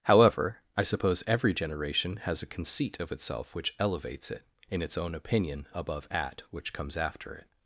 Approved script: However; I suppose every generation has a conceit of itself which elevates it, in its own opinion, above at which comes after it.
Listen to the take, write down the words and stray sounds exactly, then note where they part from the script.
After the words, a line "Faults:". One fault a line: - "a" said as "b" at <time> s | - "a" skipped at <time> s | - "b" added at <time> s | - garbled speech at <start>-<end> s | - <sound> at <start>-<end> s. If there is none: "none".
However; I suppose every generation has a conceit of itself which elevates it, in its own opinion, above at which comes after it.
Faults:
none